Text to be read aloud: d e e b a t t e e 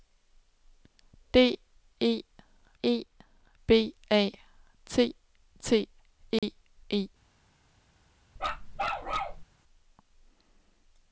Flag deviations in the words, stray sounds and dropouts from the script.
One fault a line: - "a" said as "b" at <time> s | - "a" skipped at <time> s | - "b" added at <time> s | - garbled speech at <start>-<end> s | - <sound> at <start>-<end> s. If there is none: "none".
- dropout at 6.4-6.4 s
- bark at 8.4-9.4 s